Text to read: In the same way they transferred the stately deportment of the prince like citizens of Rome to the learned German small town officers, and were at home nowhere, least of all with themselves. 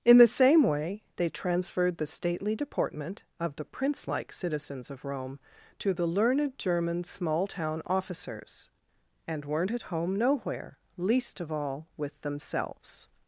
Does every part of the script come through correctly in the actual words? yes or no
no